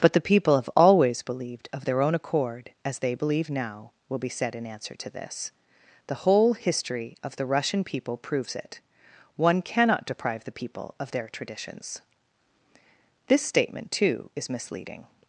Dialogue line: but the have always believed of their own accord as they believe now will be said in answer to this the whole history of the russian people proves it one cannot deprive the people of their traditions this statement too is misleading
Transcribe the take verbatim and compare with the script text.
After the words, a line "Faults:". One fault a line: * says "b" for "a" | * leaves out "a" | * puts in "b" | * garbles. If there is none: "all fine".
but the people have always believed of their own accord as they believe now will be said in answer to this the whole history of the russian people proves it one cannot deprive the people of their traditions this statement too is misleading
Faults:
* puts in "people"